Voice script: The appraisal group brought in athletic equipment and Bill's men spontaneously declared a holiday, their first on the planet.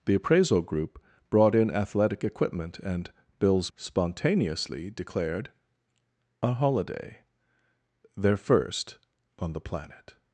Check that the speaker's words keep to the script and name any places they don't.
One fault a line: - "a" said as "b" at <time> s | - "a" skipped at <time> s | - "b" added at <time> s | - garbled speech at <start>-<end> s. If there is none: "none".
- "men" skipped at 3.7 s